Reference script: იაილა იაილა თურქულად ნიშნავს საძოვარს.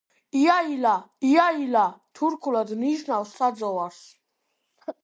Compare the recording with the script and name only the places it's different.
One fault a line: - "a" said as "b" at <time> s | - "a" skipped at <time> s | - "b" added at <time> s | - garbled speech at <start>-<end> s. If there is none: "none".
none